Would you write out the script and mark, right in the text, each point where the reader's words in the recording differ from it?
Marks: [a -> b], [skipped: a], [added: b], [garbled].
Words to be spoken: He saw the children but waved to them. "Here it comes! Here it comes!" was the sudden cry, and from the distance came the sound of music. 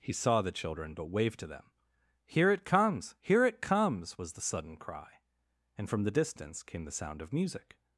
He saw the children but waved to them. "Here it comes! Here it comes!" was the sudden cry, and from the distance came the sound of music.